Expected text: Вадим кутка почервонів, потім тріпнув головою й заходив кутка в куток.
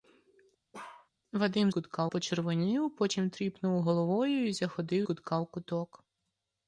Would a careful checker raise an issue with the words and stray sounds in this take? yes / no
yes